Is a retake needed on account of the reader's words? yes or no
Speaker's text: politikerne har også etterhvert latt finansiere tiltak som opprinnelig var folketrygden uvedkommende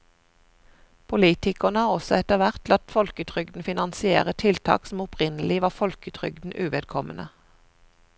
yes